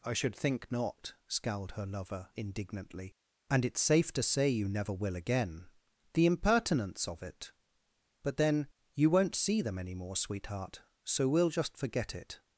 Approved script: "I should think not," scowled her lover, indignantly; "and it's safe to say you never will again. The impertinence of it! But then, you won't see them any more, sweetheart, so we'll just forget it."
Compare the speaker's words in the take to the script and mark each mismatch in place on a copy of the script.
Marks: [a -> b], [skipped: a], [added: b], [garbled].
"I should think not," scowled her lover, indignantly; "and it's safe to say you never will again. The impertinence of it! But then, you won't see them any more, sweetheart, so we'll just forget it."